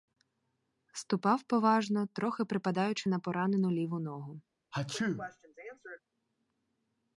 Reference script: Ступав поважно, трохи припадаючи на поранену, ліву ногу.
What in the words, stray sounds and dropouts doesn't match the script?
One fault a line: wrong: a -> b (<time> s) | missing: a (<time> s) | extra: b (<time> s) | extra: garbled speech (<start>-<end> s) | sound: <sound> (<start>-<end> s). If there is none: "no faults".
sound: sneeze (4.7-6.0 s)